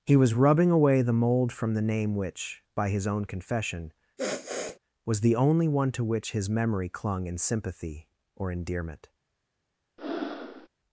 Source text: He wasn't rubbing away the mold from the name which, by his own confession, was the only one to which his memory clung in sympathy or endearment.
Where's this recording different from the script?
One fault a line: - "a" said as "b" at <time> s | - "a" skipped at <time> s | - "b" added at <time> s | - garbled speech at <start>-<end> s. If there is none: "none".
- "wasn't" said as "was" at 0.1 s